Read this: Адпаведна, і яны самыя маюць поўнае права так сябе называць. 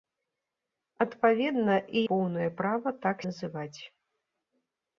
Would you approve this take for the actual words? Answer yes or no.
no